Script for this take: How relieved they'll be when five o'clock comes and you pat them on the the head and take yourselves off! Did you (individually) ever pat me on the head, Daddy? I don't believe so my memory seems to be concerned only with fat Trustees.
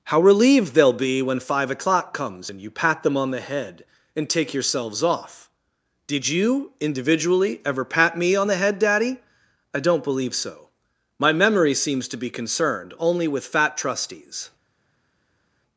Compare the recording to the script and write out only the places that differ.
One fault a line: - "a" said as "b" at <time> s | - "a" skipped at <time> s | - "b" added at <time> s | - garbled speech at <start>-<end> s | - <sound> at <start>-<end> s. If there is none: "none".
- "the" skipped at 3.4 s